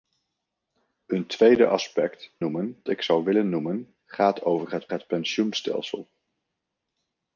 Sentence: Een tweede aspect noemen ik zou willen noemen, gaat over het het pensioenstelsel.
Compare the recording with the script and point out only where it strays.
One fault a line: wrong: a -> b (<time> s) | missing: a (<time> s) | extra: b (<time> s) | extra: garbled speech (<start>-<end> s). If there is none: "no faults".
no faults